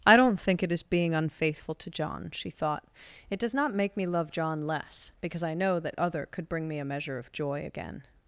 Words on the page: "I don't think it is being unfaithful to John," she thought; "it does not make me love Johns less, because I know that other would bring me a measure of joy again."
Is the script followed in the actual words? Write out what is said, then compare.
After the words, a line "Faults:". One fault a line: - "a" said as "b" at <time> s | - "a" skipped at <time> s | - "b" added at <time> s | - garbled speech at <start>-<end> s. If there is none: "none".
"I don't think it is being unfaithful to John," she thought; "it does not make me love John less, because I know that other could bring me a measure of joy again."
Faults:
- "Johns" said as "John" at 4.3 s
- "would" said as "could" at 6.3 s